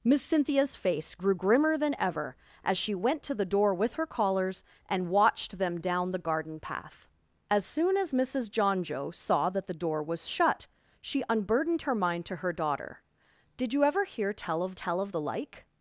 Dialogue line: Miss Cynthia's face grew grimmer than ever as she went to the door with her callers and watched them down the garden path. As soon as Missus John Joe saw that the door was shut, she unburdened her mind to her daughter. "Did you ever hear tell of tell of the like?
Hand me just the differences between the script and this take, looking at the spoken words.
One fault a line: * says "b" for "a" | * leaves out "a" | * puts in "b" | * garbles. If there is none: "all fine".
all fine